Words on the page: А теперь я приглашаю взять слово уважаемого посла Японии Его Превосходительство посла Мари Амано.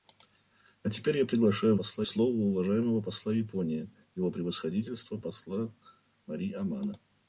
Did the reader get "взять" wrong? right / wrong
wrong